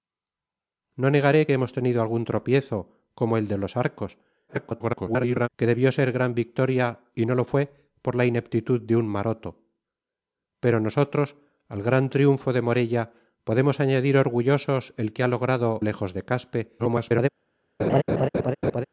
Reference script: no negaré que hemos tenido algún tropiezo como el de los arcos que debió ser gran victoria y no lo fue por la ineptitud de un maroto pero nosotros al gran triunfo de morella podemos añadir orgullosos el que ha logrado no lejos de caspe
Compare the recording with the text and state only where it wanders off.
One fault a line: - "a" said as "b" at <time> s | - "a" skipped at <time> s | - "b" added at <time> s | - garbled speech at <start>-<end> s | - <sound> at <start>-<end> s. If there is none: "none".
- garbled speech at 4.5-5.5 s
- "no" skipped at 15.8 s
- garbled speech at 16.8-17.3 s
- laugh at 17.8-18.8 s